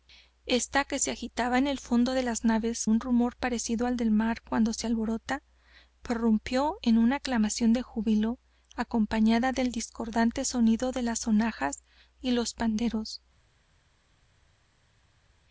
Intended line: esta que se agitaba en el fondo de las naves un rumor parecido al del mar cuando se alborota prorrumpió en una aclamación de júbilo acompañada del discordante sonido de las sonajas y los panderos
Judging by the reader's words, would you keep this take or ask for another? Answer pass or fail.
pass